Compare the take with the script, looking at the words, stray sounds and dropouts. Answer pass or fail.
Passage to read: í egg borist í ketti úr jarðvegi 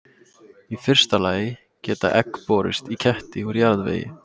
fail